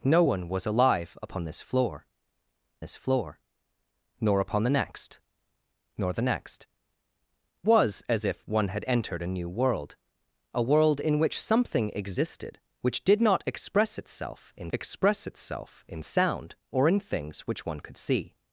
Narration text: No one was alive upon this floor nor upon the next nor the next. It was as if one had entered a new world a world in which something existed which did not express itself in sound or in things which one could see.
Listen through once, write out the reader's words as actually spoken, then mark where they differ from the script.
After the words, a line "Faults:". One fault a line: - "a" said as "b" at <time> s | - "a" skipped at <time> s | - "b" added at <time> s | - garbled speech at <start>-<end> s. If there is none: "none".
No one was alive upon this floor this floor nor upon the next nor the next. Was as if one had entered a new world a world in which something existed which did not express itself in express itself in sound or in things which one could see.
Faults:
- "this floor" added at 2.8 s
- "It" skipped at 6.7 s
- "express itself in" added at 14.7 s